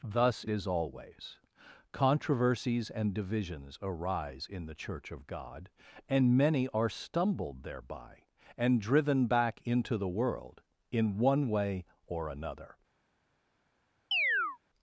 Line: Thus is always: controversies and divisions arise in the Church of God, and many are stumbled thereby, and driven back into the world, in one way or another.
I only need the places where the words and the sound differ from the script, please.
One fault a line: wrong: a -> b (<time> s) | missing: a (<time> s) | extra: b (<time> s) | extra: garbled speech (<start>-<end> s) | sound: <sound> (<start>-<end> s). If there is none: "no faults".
sound: chirp (14.1-14.6 s)